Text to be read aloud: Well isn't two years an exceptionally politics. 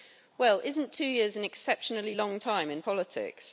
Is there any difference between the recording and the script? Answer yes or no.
yes